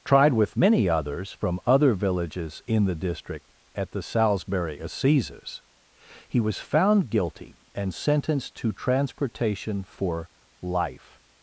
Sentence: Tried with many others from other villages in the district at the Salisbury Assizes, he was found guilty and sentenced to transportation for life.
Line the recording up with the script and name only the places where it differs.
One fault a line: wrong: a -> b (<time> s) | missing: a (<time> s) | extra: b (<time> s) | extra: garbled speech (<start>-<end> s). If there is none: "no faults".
no faults